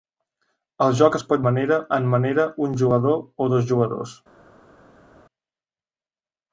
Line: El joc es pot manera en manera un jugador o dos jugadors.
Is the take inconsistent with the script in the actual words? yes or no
no